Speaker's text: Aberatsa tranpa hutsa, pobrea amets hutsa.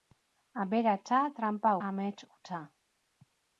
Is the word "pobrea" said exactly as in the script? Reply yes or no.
no